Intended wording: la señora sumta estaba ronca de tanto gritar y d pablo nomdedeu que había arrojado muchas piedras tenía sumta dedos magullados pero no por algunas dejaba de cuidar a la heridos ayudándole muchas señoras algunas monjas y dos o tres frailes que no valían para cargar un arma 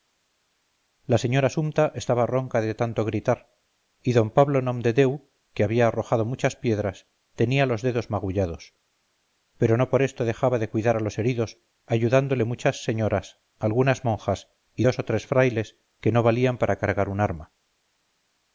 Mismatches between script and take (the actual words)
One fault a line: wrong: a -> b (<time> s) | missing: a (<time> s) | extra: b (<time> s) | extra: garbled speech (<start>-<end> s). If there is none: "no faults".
wrong: sumta -> los (7.7 s)
wrong: algunas -> esto (10.1 s)
wrong: la -> los (11.0 s)